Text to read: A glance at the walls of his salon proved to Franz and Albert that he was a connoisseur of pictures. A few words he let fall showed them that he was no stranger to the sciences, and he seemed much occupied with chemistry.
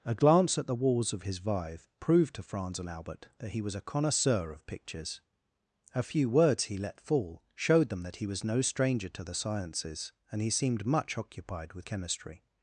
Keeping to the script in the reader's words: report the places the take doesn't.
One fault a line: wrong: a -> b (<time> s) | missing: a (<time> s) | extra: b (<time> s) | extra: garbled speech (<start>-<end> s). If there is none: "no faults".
wrong: salon -> vive (1.4 s)